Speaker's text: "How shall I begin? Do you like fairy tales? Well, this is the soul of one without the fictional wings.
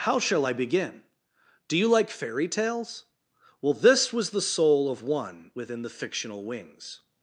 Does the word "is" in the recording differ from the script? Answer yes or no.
yes